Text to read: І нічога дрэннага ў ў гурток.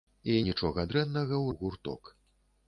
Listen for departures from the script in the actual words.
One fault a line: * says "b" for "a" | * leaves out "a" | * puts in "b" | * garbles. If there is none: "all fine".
all fine